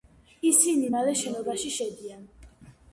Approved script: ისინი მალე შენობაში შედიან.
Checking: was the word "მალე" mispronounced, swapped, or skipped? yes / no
no